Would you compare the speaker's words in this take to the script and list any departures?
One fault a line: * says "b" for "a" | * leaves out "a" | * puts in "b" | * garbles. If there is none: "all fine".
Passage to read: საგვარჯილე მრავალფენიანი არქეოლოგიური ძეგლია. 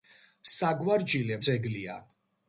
* leaves out "მრავალფენიანი არქეოლოგიური"